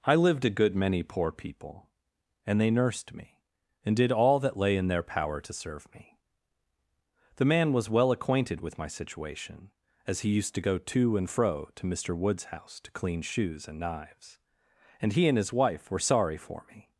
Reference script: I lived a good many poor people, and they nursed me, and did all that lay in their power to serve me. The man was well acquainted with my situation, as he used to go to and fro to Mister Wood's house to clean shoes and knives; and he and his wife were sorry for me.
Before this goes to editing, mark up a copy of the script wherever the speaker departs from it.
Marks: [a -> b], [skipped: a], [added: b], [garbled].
I lived a good many poor people, and they nursed me, and did all that lay in their power to serve me. The man was well acquainted with my situation, as he used to go to and fro to Mister Wood's house to clean shoes and knives; and he and his wife were sorry for me.